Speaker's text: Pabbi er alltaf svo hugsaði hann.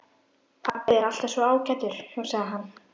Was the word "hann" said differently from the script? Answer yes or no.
no